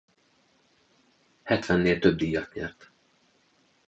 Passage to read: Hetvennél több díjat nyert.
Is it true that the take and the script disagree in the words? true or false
false